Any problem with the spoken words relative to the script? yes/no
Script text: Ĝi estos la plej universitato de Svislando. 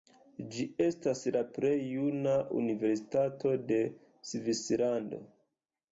yes